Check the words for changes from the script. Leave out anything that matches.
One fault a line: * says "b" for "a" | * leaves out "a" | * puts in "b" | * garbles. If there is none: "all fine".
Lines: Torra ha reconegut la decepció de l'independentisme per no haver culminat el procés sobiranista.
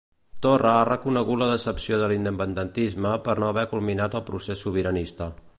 all fine